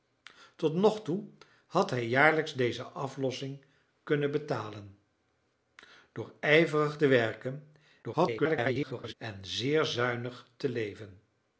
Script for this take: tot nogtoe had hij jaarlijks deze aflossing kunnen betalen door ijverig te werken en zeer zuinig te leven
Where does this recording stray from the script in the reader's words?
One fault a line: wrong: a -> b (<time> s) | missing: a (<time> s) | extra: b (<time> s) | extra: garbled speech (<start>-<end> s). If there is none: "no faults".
extra: garbled speech (8.0-9.1 s)